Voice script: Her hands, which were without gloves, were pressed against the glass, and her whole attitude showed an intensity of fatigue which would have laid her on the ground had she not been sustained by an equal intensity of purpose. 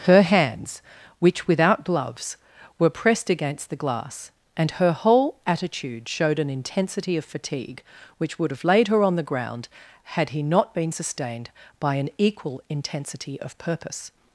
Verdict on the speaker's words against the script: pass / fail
fail